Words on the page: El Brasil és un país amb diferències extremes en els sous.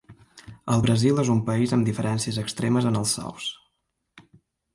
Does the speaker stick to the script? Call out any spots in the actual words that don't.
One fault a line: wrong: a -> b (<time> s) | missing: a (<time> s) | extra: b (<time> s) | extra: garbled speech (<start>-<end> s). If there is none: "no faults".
no faults